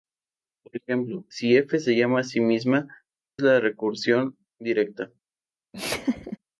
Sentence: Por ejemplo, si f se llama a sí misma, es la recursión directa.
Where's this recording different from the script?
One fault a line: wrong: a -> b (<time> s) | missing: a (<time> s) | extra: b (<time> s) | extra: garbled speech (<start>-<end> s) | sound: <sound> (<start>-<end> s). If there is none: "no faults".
sound: laugh (5.7-6.4 s)